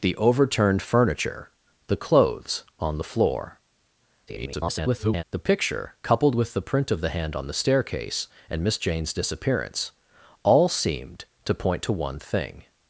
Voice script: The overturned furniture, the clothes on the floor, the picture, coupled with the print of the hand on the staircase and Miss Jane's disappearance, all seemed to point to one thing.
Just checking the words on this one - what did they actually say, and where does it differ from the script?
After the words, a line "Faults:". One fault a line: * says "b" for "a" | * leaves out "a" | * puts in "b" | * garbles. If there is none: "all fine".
The overturned furniture, the clothes on the floor, [garbled] the picture, coupled with the print of the hand on the staircase and Miss Jane's disappearance, all seemed to point to one thing.
Faults:
* garbles